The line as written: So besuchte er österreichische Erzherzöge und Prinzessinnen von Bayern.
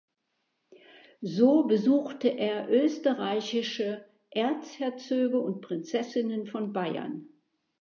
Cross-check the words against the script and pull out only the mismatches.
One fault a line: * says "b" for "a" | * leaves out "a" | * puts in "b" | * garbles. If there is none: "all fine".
all fine